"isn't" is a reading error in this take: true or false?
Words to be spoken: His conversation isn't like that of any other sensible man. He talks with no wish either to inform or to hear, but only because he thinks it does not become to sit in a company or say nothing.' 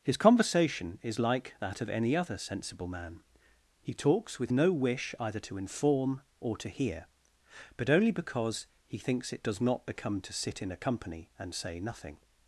true